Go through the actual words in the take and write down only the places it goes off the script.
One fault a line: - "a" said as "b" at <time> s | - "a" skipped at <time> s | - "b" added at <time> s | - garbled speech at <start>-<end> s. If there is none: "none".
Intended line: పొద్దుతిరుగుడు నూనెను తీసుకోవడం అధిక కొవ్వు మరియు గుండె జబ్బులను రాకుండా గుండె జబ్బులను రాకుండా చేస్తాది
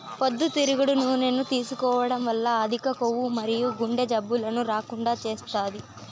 - "వల్ల" added at 2.3 s
- "గుండె జబ్బులను రాకుండా" skipped at 5.1 s